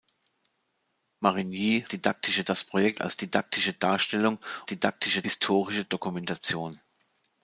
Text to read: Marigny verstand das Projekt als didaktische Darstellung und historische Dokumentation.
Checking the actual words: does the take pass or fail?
fail